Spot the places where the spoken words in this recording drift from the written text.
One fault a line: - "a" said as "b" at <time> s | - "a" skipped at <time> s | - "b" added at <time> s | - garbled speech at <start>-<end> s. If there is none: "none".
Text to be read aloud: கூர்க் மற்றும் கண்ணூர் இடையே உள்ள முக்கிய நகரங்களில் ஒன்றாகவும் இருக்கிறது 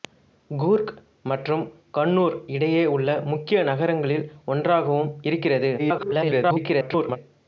- garbled speech at 5.8-7.2 s